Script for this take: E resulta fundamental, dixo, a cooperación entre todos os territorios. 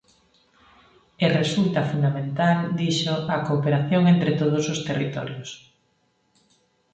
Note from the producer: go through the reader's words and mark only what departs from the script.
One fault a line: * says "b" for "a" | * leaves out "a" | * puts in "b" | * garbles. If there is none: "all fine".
all fine